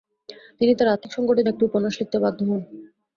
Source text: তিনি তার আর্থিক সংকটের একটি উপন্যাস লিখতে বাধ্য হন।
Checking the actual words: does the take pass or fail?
pass